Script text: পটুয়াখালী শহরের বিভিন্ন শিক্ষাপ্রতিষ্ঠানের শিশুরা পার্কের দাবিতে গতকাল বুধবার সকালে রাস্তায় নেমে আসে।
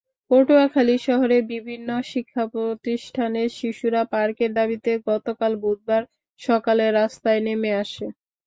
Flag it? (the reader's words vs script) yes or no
no